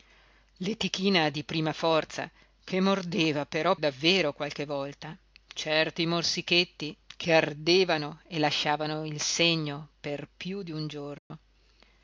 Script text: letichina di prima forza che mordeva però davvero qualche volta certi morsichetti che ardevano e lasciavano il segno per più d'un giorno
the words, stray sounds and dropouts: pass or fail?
fail